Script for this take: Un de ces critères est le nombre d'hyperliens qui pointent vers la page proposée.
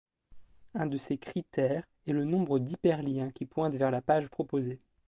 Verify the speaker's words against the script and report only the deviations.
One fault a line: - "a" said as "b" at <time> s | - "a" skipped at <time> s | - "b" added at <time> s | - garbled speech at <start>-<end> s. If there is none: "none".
none